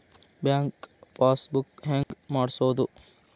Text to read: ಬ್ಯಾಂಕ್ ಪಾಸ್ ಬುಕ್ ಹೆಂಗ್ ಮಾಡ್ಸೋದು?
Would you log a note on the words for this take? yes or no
no